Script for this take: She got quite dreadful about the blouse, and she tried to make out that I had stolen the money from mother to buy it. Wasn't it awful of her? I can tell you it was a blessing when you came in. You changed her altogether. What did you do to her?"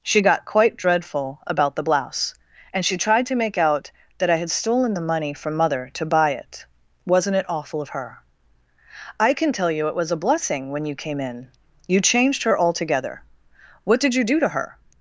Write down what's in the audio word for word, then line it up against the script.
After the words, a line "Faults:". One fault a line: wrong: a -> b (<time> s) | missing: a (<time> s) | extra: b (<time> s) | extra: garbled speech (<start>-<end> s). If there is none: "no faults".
She got quite dreadful about the blouse, and she tried to make out that I had stolen the money from mother to buy it. Wasn't it awful of her? I can tell you it was a blessing when you came in. You changed her altogether. What did you do to her?"
Faults:
no faults